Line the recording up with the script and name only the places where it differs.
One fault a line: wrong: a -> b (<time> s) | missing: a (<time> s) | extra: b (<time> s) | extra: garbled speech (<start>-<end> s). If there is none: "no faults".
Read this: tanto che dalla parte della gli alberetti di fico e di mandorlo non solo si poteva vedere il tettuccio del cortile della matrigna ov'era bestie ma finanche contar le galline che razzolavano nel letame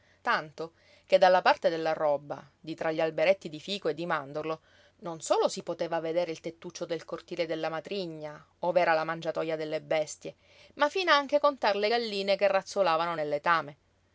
extra: roba di tra (1.9 s)
extra: la mangiatoja delle (8.9 s)